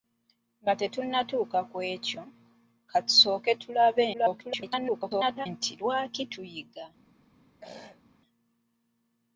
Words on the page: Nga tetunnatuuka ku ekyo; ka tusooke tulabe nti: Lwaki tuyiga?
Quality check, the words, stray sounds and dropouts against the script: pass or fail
fail